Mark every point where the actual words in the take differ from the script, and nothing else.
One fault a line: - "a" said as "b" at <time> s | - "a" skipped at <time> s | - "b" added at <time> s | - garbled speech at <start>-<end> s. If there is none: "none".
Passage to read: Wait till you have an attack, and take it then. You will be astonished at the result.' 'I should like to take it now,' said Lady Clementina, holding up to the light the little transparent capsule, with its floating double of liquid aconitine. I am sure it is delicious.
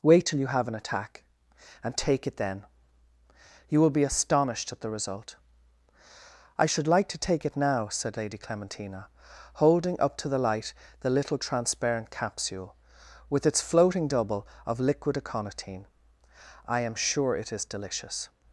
none